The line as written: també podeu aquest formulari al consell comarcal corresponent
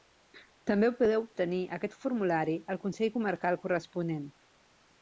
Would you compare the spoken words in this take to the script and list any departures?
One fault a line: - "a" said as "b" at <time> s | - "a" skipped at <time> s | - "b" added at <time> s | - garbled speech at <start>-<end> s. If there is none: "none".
- "obtenir" added at 1.2 s